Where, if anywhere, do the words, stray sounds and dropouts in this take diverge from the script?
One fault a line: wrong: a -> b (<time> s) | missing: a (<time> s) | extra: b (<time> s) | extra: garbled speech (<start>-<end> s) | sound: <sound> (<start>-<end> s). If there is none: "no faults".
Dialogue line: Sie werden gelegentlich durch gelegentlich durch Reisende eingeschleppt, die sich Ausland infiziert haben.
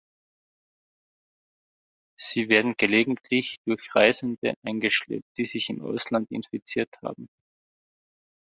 missing: gelegentlich durch (4.0 s)
extra: im (5.7 s)